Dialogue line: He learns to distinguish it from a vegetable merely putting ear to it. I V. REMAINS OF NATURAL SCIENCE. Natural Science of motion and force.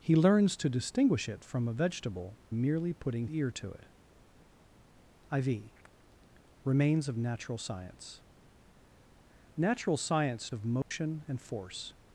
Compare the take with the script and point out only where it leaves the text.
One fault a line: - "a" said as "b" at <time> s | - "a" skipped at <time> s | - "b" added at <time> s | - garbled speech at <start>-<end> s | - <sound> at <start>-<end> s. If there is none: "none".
- dropout at 10.8-10.9 s